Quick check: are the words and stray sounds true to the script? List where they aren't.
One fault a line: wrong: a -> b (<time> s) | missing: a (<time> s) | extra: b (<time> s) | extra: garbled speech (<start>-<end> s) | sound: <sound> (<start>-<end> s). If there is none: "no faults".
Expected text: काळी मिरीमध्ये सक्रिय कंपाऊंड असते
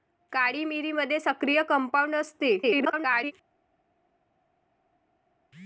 extra: garbled speech (2.6-3.3 s)